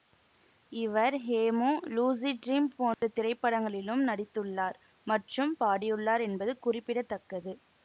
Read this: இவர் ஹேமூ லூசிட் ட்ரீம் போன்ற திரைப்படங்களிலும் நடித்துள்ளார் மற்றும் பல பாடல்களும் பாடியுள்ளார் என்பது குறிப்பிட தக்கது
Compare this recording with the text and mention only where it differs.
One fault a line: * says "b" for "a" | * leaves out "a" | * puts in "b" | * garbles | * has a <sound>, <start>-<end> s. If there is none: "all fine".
* has a dropout, 2.9-3.0 s
* leaves out "பல பாடல்களும்"